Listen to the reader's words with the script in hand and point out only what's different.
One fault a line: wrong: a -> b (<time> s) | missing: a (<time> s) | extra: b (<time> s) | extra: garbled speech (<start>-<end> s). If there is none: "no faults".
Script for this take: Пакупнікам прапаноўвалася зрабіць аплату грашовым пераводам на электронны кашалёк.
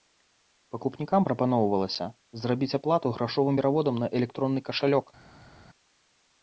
no faults